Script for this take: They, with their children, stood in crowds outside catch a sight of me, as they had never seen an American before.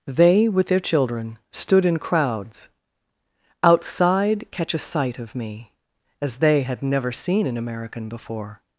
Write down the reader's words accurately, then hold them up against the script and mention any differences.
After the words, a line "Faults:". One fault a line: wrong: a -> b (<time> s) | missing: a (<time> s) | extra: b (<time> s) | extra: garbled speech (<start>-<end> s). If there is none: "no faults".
They, with their children, stood in crowds outside catch a sight of me, as they had never seen an American before.
Faults:
no faults